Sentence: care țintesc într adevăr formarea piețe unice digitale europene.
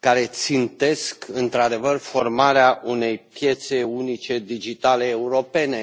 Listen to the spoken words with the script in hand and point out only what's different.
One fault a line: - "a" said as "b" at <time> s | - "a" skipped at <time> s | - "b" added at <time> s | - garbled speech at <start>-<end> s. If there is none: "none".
- "unei" added at 2.9 s